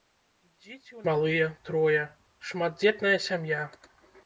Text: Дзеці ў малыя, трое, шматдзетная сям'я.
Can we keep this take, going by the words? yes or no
yes